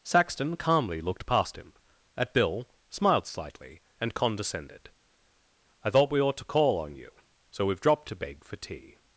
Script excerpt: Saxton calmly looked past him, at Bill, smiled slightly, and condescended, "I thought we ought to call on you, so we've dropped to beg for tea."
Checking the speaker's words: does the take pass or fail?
pass